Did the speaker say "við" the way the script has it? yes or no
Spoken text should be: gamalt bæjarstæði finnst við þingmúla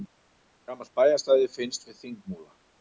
yes